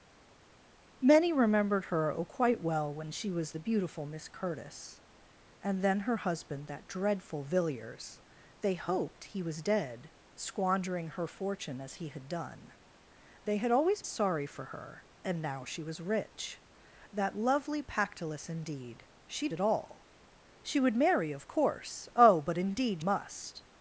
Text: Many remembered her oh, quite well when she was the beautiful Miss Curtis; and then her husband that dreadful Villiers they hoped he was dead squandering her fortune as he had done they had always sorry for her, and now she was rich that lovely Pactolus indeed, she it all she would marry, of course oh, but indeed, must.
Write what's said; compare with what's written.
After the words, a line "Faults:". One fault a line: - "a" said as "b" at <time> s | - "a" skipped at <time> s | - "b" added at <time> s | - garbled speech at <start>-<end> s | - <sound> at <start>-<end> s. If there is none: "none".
Many remembered her oh, quite well when she was the beautiful Miss Curtis; and then her husband that dreadful Villiers they hoped he was dead squandering her fortune as he had done they had always sorry for her, and now she was rich that lovely Pactolus indeed, she it all she would marry, of course oh, but indeed, must.
Faults:
none